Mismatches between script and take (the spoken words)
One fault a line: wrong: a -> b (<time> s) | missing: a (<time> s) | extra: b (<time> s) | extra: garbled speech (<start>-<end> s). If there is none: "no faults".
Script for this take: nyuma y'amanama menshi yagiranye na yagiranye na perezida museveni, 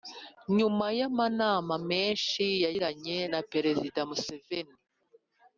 missing: yagiranye na (3.4 s)